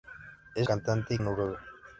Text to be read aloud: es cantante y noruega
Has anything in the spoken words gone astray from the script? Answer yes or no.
no